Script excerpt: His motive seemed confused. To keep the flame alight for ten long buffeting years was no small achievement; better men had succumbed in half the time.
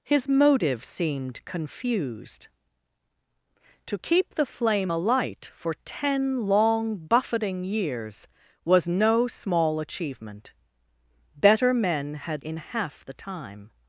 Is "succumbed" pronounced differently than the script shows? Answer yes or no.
yes